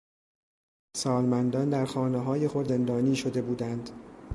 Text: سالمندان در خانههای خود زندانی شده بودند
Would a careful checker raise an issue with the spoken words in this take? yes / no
no